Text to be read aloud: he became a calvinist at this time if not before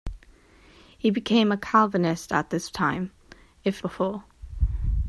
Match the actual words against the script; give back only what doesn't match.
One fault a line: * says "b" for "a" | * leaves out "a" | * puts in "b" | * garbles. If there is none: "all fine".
* leaves out "not"